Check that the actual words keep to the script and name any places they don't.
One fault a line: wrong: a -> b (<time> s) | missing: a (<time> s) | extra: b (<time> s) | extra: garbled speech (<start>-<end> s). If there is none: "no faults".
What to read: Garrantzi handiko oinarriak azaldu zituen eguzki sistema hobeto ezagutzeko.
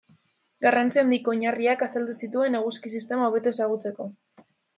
no faults